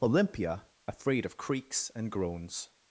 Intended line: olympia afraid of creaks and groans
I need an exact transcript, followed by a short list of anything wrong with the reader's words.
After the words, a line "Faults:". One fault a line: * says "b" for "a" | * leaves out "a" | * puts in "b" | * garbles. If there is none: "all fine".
olympia afraid of creaks and groans
Faults:
all fine